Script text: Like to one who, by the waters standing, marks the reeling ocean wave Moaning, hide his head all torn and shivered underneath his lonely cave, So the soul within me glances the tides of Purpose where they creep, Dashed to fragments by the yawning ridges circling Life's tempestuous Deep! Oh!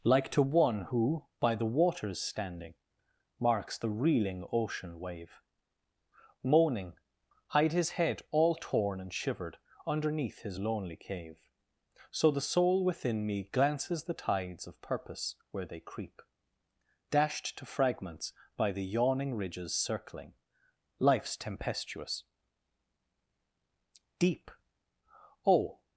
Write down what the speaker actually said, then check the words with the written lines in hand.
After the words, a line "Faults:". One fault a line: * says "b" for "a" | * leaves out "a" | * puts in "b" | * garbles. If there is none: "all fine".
Like to one who, by the waters standing, marks the reeling ocean wave Moaning, hide his head all torn and shivered underneath his lonely cave, So the soul within me glances the tides of Purpose where they creep, Dashed to fragments by the yawning ridges circling Life's tempestuous Deep! Oh!
Faults:
all fine